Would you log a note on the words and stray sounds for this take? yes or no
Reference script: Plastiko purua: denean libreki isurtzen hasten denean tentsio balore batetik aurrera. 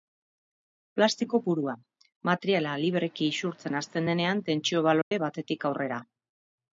yes